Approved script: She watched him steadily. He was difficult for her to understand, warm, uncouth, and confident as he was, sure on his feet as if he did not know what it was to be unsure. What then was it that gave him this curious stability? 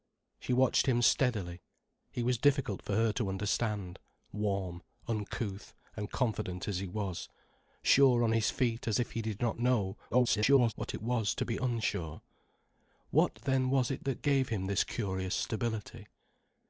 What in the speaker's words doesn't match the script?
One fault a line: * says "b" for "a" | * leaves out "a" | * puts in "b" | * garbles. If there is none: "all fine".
* garbles